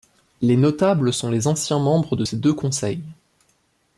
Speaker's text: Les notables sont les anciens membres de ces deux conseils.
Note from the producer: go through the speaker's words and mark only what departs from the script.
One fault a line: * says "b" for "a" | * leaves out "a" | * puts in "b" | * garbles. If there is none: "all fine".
all fine